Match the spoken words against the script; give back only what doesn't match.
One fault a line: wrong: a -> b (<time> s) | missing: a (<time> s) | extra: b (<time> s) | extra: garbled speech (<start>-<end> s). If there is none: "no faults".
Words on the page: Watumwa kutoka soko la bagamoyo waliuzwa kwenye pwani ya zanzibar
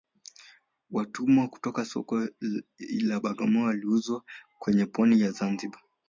no faults